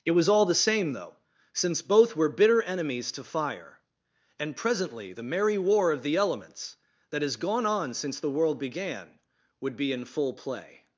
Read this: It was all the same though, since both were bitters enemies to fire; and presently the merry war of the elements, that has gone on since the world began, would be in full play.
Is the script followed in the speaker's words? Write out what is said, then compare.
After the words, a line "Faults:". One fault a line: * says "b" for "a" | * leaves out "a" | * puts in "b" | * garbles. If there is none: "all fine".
It was all the same though, since both were bitter enemies to fire; and presently the merry war of the elements, that has gone on since the world began, would be in full play.
Faults:
* says "bitter" for "bitters"